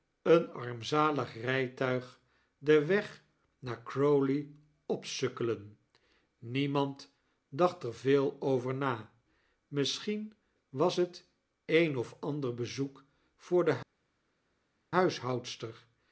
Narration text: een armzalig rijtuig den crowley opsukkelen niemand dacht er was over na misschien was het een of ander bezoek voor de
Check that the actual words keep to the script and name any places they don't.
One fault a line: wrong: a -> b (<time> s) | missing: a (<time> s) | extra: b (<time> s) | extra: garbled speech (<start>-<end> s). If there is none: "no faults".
extra: weg naar (2.9 s)
wrong: was -> veel (7.9 s)